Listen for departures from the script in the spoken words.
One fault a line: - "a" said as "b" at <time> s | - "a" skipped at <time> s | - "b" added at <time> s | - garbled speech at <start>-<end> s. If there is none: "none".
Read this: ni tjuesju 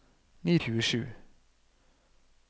none